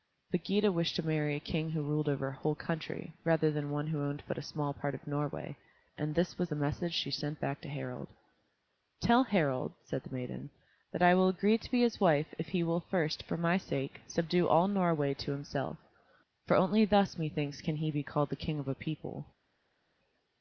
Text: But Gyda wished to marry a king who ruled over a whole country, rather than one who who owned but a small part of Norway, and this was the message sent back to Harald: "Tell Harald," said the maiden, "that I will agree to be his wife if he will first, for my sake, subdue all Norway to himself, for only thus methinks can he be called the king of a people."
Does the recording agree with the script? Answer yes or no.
no